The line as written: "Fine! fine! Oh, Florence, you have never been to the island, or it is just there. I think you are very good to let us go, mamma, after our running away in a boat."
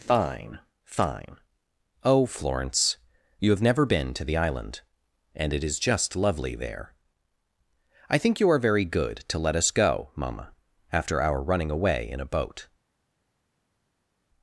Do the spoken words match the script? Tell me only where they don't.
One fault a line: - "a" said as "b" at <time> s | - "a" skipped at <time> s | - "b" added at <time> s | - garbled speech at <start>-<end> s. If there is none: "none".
- "or" said as "and" at 5.3 s
- "lovely" added at 6.1 s